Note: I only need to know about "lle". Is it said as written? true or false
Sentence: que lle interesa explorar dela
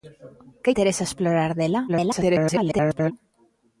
false